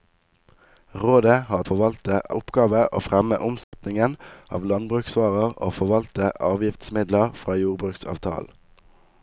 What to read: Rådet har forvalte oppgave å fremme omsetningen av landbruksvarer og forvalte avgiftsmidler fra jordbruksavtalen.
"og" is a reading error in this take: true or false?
false